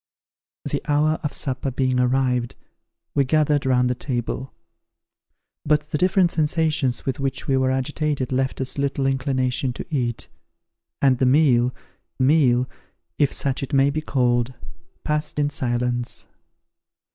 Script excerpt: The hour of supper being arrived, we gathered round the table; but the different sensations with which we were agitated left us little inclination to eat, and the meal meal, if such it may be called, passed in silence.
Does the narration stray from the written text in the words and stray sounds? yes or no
no